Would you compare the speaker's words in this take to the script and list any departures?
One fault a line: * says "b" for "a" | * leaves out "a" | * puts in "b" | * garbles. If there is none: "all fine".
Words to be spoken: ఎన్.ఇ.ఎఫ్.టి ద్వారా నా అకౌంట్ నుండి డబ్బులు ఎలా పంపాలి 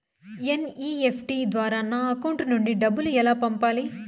all fine